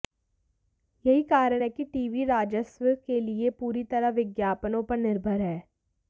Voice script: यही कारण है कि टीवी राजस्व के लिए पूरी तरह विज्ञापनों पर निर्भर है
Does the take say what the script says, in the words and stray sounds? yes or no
yes